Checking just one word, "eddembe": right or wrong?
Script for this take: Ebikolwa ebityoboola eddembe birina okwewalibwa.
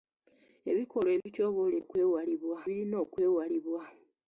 wrong